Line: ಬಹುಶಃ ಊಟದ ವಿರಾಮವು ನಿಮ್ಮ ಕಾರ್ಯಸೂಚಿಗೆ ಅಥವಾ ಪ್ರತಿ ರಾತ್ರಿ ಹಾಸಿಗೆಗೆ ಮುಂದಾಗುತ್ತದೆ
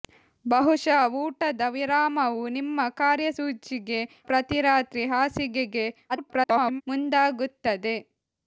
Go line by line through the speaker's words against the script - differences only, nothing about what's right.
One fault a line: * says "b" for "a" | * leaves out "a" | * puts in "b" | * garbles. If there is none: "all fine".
* leaves out "ಅಥವಾ"
* garbles